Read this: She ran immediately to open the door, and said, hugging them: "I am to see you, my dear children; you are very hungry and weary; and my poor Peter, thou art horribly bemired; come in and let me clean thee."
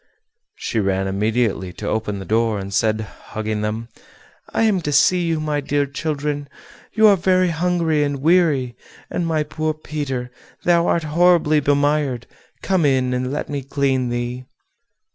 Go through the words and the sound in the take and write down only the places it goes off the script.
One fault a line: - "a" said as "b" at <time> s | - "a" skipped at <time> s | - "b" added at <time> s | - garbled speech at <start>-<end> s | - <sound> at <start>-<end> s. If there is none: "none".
none